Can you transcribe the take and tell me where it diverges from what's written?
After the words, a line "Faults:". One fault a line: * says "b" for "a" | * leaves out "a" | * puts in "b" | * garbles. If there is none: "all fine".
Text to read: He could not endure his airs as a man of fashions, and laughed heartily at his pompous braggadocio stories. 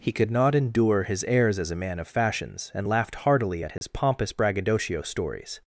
He could not endure his airs as a man of fashions, and laughed heartily at his pompous braggadocio stories.
Faults:
all fine